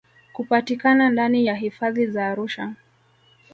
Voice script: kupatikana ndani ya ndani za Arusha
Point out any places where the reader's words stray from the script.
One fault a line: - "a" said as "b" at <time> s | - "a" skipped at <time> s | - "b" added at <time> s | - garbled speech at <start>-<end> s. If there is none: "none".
- "ndani" said as "hifadhi" at 1.6 s